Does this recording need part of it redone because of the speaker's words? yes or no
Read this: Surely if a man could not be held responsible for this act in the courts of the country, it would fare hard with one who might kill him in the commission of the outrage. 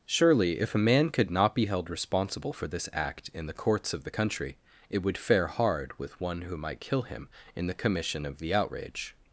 no